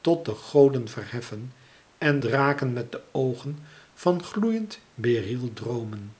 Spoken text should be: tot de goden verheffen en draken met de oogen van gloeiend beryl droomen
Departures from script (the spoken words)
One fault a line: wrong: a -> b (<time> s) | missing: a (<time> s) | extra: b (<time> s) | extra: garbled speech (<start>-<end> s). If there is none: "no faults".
no faults